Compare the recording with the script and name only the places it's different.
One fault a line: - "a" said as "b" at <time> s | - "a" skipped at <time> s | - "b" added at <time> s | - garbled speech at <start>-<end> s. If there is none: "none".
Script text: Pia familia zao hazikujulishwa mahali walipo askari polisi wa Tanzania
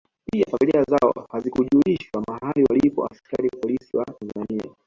none